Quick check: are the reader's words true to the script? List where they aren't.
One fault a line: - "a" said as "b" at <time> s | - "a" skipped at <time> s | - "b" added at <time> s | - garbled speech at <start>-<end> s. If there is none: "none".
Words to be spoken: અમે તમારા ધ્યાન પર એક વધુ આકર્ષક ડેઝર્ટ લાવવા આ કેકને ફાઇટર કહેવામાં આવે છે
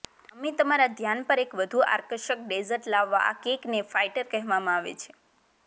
none